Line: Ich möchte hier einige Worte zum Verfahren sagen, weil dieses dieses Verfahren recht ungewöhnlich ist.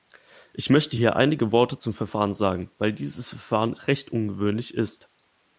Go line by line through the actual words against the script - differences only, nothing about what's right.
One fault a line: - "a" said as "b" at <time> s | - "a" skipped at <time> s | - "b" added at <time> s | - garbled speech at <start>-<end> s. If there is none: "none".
- "dieses" skipped at 3.3 s